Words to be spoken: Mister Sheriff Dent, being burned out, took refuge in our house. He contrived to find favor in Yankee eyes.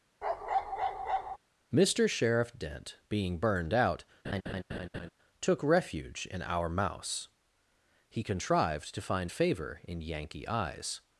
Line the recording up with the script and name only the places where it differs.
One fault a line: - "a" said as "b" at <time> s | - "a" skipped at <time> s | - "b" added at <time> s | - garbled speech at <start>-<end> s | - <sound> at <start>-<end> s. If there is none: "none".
- bark at 0.2-1.4 s
- laugh at 4.2-5.1 s
- "house" said as "mouse" at 6.7 s